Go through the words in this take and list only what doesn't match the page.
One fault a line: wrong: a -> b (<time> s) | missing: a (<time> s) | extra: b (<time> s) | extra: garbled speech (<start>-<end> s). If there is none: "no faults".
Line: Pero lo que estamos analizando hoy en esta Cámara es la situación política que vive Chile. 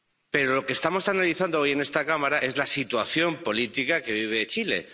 no faults